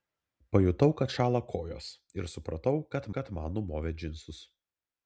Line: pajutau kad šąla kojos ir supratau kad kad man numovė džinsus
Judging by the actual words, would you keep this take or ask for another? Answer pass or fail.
pass